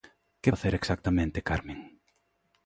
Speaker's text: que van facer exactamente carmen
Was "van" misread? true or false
true